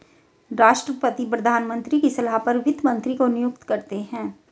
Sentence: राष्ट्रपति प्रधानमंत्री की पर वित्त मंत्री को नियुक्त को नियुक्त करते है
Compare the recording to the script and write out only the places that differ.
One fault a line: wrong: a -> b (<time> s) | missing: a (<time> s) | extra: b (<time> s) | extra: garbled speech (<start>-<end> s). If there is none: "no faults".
extra: सलाह (2.1 s)
missing: को नियुक्त (3.6 s)